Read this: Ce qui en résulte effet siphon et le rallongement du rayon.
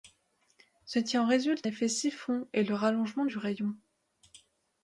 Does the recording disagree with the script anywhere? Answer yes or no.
no